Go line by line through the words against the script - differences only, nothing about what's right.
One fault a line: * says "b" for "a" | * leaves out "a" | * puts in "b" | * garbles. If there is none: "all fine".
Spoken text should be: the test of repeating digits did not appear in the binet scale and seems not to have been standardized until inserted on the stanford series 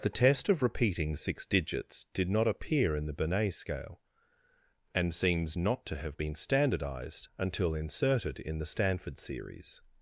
* puts in "six"
* says "in" for "on"